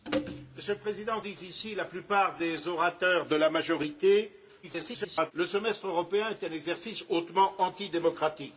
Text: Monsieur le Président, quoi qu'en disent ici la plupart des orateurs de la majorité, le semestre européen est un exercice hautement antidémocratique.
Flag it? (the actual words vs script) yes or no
yes